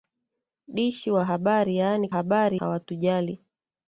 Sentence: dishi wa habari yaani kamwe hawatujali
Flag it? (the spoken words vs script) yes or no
yes